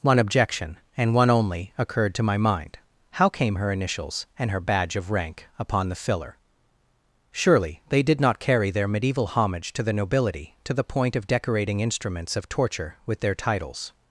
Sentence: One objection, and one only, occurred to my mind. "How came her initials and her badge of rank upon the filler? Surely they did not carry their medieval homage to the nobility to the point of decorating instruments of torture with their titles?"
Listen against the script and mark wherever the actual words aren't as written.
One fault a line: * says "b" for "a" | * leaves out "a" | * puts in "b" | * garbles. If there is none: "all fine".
all fine